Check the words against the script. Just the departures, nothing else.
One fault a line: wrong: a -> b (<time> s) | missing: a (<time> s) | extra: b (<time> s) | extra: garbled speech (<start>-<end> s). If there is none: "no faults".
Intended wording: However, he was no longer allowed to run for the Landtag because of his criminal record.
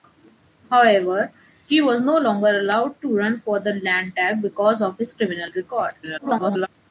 extra: garbled speech (6.0-6.7 s)